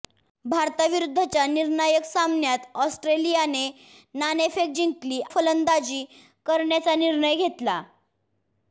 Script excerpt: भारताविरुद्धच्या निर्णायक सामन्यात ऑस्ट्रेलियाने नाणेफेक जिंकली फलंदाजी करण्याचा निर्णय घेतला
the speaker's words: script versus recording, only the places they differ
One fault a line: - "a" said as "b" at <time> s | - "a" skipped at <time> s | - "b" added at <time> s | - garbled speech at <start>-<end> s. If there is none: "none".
none